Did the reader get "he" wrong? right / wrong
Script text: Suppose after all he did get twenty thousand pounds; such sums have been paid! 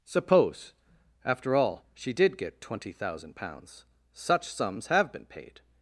wrong